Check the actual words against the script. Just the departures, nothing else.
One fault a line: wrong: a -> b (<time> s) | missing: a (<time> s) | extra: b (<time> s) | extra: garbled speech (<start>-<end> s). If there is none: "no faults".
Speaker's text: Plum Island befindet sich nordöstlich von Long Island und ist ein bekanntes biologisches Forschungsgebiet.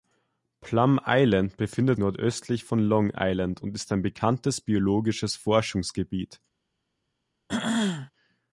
missing: sich (2.0 s)